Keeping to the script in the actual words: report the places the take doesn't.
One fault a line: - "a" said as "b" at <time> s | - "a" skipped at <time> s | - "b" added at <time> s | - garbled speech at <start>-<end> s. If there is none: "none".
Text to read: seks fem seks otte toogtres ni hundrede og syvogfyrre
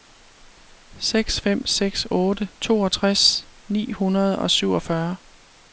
none